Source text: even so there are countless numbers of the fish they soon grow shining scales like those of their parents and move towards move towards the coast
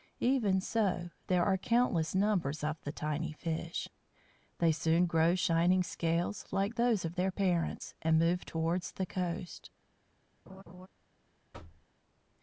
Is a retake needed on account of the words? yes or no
yes